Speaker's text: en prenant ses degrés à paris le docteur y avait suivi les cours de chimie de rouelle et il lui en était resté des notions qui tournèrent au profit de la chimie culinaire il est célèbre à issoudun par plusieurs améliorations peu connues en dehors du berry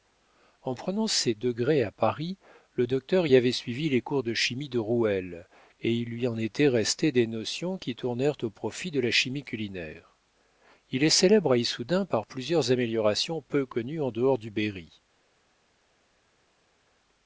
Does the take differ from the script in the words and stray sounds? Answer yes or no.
no